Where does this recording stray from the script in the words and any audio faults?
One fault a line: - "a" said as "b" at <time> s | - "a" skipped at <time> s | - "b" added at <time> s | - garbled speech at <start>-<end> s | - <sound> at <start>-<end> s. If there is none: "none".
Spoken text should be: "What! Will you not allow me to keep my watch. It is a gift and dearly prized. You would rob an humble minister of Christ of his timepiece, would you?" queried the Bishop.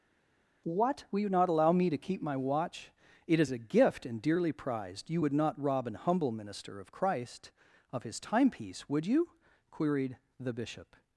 - "not" added at 5.3 s